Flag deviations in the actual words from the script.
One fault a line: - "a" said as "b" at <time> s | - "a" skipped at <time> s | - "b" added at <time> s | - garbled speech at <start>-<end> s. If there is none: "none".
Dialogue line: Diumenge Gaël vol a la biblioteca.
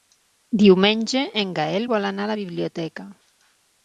- "en" added at 1.4 s
- "anar" added at 2.1 s